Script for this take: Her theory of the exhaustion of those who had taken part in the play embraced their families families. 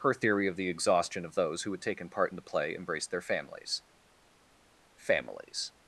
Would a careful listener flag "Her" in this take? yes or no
no